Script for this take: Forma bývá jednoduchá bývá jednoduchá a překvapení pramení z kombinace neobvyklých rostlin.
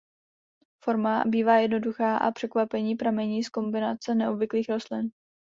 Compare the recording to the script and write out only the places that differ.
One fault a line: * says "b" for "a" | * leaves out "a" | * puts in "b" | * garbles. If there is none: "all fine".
* leaves out "bývá jednoduchá"